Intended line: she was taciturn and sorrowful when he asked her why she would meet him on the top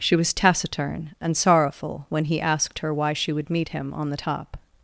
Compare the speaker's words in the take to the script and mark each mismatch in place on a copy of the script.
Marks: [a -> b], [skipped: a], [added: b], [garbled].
she was taciturn and sorrowful when he asked her why she would meet him on the top